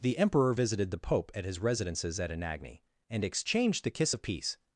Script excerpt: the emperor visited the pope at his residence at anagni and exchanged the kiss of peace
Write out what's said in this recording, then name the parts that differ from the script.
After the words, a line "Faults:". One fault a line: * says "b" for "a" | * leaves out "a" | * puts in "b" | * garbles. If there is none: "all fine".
the emperor visited the pope at his residences at anagni and exchanged the kiss of peace
Faults:
* says "residences" for "residence"